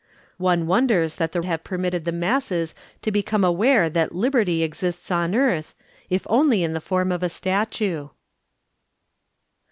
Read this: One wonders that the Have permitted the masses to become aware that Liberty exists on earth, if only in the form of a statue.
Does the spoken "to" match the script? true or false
true